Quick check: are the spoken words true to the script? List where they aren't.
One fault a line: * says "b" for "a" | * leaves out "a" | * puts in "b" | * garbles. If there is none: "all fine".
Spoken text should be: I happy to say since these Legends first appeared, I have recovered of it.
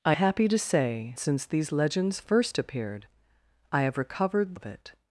all fine